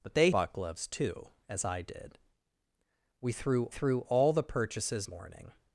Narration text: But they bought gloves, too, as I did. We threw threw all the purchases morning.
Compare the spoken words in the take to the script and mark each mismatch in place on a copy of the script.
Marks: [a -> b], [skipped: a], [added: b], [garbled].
But they bought gloves, too, as I did. We threw threw all the purchases morning.